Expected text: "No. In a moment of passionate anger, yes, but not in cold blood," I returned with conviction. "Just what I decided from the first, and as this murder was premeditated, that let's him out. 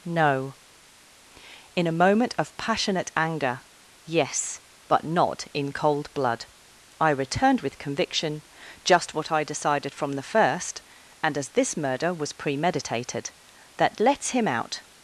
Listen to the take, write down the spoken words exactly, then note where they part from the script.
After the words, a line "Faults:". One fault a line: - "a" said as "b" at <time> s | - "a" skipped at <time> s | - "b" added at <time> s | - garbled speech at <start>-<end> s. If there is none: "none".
"No. In a moment of passionate anger, yes, but not in cold blood," I returned with conviction. "Just what I decided from the first, and as this murder was premeditated, that let's him out.
Faults:
none